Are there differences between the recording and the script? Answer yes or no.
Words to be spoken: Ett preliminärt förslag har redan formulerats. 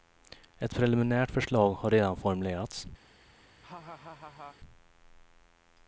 no